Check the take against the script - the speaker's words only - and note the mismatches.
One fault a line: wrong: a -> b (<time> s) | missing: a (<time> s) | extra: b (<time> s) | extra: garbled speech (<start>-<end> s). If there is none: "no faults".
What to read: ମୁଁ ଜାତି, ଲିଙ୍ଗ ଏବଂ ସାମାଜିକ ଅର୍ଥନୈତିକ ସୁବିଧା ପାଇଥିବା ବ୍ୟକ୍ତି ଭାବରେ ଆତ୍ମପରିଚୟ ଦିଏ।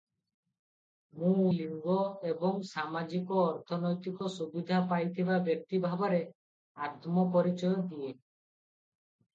missing: ଜାତି (1.5 s)